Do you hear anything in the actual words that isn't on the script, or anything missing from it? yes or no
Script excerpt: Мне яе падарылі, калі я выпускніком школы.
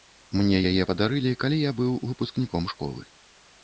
yes